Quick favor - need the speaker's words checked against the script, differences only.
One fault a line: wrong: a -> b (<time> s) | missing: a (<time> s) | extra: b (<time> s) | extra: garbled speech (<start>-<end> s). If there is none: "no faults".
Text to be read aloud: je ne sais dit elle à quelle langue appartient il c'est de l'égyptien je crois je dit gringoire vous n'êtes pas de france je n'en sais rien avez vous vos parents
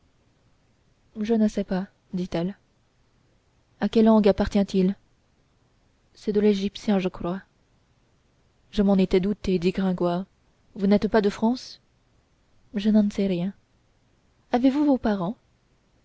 extra: pas (1.6 s)
extra: m'en étais douté (8.8 s)